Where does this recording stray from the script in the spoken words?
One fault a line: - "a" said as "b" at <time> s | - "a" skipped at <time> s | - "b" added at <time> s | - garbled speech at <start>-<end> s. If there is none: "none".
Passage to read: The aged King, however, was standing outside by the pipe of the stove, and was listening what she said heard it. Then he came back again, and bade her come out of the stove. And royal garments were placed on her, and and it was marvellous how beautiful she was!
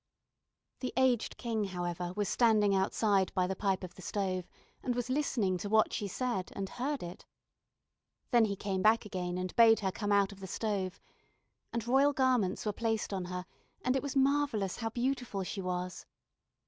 - "to" added at 5.6 s
- "and" added at 6.5 s
- "and" skipped at 14.0 s